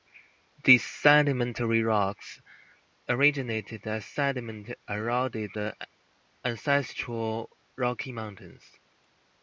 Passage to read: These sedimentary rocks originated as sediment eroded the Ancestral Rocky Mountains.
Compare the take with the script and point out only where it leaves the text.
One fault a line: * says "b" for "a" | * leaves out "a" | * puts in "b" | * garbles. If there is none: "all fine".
all fine